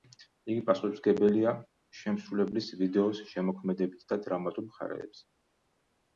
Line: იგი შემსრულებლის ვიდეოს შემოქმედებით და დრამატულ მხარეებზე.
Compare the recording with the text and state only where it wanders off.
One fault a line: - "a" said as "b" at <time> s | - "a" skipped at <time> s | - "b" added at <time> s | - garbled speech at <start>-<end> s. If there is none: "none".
- "პასუხისმგებელია" added at 0.7 s